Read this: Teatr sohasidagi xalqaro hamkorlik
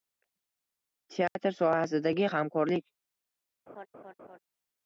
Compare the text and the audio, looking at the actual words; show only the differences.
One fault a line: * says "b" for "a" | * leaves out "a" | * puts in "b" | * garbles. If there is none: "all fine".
* leaves out "xalqaro"